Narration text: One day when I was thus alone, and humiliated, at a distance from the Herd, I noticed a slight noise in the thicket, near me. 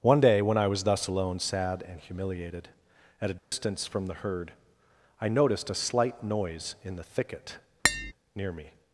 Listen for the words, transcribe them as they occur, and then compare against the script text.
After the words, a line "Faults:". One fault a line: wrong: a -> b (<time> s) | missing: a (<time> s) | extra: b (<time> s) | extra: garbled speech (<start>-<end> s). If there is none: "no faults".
One day when I was thus alone, sad and humiliated, at a distance from the Herd, I noticed a slight noise in the thicket, near me.
Faults:
extra: sad (1.4 s)